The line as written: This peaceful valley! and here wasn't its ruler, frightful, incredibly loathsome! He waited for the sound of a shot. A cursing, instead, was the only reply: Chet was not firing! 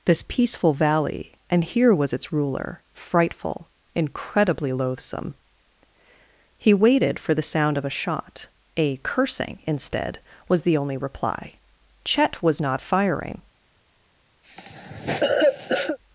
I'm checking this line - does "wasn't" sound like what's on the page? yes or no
no